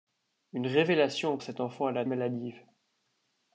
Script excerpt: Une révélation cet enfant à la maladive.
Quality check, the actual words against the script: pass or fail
pass